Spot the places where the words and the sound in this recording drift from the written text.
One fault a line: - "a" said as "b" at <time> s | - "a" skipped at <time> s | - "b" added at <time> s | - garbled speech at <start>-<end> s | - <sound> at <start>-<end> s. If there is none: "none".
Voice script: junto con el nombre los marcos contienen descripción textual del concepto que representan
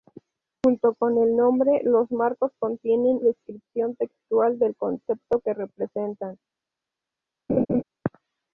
- laugh at 7.5-7.8 s